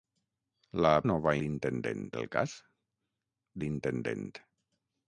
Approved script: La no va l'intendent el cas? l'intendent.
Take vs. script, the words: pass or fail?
pass